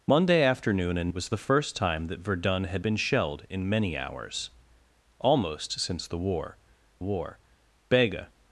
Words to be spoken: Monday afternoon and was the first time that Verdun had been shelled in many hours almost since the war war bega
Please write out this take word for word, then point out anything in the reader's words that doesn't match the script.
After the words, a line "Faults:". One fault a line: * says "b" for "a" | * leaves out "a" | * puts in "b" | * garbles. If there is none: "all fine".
Monday afternoon and was the first time that Verdun had been shelled in many hours almost since the war war bega
Faults:
all fine